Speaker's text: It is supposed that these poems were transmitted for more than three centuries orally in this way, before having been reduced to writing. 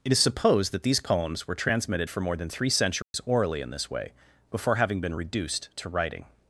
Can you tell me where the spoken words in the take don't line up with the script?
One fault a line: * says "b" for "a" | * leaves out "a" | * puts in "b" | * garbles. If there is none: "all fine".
all fine